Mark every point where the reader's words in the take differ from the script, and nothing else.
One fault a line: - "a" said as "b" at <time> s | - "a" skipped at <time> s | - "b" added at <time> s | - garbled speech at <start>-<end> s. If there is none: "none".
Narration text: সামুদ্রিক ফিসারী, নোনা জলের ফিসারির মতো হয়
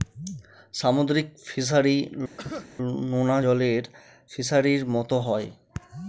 none